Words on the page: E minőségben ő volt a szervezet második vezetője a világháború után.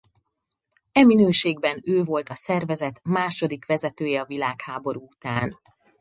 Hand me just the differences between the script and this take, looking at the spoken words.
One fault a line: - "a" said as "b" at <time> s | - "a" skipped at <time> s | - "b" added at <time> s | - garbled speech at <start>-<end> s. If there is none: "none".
none